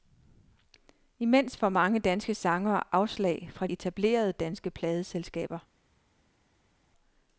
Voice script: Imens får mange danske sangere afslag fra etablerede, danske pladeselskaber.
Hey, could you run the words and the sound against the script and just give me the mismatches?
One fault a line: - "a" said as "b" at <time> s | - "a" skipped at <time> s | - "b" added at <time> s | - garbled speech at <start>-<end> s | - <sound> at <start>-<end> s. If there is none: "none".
none